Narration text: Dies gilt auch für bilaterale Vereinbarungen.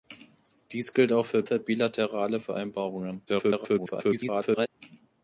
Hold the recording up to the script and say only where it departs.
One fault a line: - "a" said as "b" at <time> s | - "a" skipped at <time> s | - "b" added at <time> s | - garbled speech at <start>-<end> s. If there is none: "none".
- "für" added at 1.4 s
- garbled speech at 3.3-4.7 s